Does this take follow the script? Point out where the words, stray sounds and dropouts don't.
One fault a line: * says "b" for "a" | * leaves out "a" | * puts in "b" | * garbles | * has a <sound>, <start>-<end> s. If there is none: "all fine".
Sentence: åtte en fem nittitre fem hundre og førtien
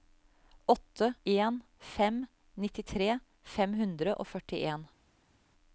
all fine